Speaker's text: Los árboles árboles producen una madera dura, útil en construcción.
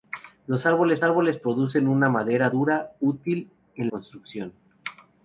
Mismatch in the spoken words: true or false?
false